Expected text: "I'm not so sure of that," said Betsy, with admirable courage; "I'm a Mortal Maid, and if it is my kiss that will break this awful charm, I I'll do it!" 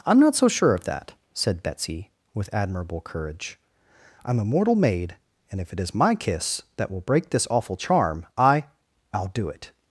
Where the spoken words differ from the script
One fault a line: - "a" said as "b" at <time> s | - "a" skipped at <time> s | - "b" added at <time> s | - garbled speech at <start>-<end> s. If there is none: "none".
none